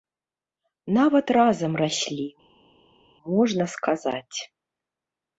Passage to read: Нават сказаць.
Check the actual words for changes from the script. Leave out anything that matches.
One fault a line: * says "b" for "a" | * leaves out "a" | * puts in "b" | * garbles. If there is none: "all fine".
* puts in "разам раслі можна"